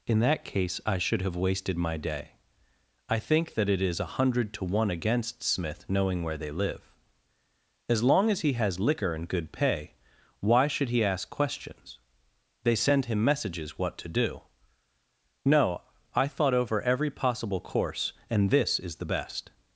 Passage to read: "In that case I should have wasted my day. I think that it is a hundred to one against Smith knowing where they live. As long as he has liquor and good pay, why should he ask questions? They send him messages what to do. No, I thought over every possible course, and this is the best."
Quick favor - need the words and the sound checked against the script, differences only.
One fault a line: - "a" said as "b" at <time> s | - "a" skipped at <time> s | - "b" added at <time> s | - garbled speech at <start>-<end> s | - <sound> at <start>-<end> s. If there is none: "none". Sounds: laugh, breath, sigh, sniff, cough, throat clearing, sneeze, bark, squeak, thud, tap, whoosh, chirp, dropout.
none